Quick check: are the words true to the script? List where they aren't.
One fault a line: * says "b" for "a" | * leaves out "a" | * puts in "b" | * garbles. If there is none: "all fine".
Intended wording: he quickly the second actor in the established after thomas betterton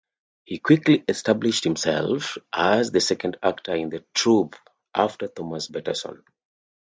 * puts in "established himself as"
* says "troupe" for "established"